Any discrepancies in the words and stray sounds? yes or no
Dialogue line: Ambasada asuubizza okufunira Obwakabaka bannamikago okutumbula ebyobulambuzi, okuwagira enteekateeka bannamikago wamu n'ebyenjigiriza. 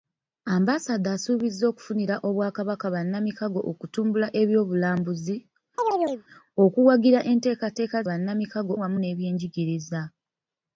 yes